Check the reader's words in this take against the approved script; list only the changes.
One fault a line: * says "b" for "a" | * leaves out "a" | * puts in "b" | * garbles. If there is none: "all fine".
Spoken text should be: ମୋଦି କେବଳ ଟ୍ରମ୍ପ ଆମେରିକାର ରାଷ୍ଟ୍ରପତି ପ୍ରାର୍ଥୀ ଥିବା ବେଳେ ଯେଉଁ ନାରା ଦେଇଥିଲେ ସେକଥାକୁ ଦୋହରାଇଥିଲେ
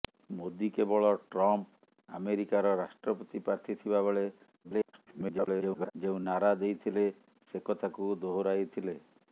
* garbles